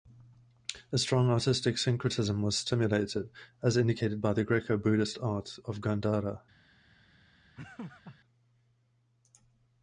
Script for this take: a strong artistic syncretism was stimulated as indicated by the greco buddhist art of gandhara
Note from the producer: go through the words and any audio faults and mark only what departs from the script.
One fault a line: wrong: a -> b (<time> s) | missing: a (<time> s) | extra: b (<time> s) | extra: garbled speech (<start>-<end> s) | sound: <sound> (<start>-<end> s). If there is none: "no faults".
sound: laugh (7.6-8.2 s)